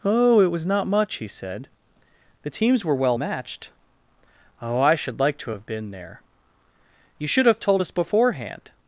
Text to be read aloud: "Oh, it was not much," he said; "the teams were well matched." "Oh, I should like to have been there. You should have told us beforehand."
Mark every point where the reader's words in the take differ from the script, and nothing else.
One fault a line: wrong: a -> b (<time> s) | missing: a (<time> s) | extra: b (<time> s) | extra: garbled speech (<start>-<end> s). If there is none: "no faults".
no faults